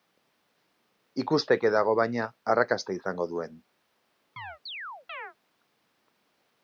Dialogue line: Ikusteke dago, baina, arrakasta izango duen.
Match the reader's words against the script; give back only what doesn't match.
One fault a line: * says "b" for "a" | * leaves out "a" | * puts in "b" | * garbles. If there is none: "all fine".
all fine